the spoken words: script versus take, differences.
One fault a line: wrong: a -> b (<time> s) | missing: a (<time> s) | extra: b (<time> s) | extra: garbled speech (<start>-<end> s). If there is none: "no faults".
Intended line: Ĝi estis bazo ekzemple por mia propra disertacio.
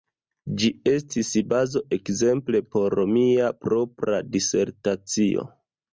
no faults